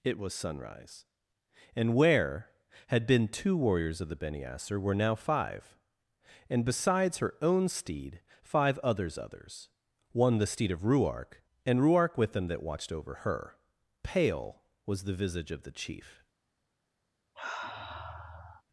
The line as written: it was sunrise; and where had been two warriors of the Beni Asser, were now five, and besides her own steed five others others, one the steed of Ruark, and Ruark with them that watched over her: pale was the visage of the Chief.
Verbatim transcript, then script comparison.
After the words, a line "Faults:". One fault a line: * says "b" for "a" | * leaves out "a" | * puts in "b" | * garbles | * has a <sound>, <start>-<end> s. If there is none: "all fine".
it was sunrise; and where had been two warriors of the Beni Asser, were now five, and besides her own steed five others others, one the steed of Ruark, and Ruark with them that watched over her: pale was the visage of the Chief.
Faults:
* has a sniff, 17.3-18.6 s